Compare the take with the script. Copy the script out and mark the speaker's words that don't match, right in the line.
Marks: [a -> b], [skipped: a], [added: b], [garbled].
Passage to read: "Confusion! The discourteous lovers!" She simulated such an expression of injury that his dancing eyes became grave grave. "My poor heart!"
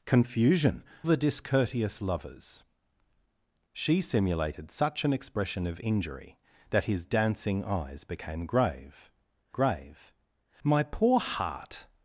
"Confusion! The discourteous lovers!" She simulated such an expression of injury that his dancing eyes became grave grave. "My poor heart!"